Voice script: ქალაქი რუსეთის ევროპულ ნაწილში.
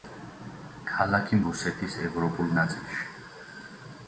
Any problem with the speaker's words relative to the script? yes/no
no